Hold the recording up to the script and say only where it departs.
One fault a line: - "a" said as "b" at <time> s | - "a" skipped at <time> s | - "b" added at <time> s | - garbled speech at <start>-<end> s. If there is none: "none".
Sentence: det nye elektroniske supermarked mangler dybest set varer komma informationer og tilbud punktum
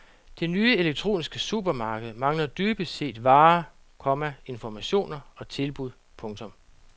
none